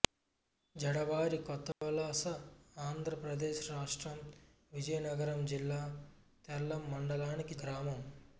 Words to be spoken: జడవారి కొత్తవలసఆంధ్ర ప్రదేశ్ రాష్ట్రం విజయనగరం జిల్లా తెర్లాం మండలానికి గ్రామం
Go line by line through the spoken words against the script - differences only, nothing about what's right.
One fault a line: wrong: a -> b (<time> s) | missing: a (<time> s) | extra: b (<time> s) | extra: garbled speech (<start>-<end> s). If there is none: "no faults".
no faults